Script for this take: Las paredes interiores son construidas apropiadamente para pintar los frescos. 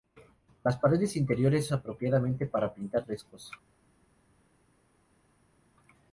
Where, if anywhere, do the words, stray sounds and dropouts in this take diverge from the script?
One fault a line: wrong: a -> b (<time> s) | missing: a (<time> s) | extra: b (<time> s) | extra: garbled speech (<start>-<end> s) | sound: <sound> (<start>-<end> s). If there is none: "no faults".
missing: son construidas (1.7 s)
missing: los (3.1 s)